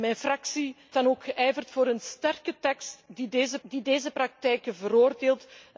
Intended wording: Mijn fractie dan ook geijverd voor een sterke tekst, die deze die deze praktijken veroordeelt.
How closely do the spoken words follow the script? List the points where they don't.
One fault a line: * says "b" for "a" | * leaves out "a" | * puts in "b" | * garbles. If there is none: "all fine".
all fine